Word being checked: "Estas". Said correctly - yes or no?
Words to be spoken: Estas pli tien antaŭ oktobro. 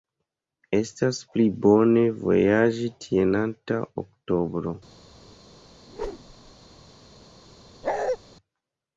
yes